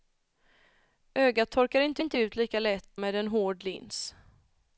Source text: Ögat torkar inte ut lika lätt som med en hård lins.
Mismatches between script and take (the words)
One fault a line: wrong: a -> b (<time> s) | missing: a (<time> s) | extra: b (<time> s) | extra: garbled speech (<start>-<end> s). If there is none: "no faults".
extra: inte (2.0 s)
missing: som (3.0 s)